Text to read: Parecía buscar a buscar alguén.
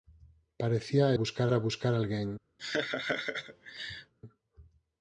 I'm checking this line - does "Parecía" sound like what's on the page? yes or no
yes